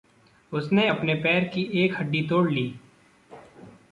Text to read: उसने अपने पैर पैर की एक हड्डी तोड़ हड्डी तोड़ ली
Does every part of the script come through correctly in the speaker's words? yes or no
no